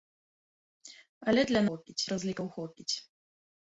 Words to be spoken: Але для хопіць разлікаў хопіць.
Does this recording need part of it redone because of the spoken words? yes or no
no